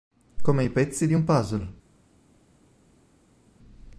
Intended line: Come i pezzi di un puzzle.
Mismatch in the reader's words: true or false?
false